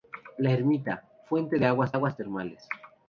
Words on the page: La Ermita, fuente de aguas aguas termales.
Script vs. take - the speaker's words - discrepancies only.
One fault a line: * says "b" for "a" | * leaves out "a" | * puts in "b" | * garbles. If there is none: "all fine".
all fine